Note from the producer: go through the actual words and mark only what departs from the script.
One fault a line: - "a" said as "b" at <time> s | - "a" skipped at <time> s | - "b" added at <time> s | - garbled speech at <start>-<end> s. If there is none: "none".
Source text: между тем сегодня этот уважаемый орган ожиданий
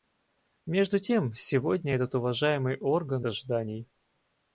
none